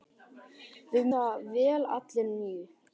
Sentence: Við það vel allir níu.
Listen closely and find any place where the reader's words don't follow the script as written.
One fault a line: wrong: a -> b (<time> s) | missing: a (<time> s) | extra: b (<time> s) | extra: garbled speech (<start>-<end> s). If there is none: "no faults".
no faults